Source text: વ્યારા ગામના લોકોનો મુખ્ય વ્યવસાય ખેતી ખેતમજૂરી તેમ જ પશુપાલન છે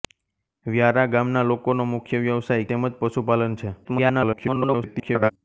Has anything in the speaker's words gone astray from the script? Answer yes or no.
yes